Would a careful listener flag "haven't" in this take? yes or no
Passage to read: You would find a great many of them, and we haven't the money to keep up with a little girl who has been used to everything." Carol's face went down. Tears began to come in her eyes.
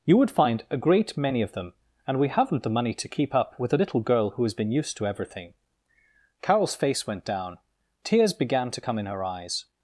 no